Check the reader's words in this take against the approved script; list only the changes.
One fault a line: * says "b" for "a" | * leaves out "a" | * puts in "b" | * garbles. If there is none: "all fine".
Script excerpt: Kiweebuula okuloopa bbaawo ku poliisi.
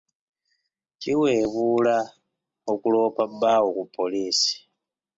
all fine